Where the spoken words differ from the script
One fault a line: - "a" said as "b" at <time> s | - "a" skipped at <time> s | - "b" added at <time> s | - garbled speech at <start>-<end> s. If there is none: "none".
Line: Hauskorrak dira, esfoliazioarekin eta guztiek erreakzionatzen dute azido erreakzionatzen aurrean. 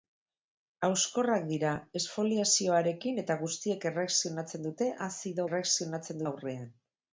none